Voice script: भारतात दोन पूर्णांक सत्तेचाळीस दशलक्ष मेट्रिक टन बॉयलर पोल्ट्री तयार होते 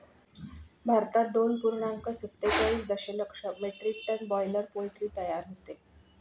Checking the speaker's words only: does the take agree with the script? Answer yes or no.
yes